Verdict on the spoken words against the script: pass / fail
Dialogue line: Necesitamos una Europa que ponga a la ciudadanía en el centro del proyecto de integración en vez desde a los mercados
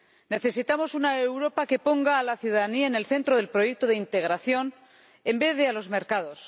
fail